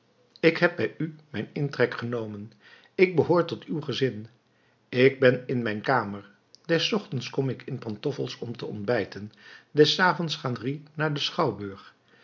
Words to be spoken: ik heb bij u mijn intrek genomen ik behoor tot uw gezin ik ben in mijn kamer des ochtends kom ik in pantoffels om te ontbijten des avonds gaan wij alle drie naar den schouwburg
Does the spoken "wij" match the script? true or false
false